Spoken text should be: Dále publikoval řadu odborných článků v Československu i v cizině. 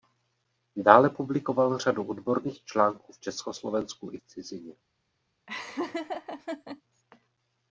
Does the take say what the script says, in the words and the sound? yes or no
no